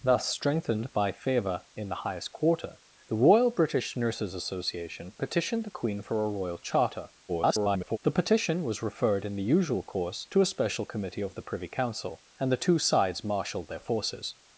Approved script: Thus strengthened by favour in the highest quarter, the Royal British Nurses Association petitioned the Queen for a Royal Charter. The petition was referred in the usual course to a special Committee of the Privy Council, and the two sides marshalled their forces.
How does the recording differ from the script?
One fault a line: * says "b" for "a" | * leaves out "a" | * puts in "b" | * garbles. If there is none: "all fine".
* garbles